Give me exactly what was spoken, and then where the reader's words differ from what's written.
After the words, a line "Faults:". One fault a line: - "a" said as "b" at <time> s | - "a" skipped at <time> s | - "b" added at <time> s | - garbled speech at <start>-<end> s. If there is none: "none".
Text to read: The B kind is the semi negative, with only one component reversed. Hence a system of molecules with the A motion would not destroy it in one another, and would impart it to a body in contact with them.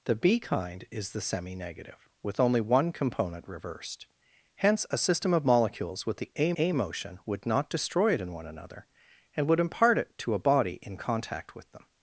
The B kind is the semi negative, with only one component reversed. Hence a system of molecules with the A A motion would not destroy it in one another, and would impart it to a body in contact with them.
Faults:
- "A" added at 6.6 s